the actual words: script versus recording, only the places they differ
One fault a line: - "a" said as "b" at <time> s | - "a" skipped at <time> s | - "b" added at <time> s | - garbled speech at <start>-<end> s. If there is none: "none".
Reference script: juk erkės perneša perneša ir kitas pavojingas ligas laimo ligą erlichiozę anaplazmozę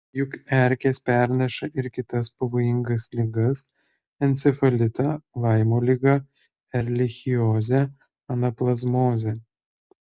- "perneša" skipped at 1.7 s
- "encefalitą" added at 4.3 s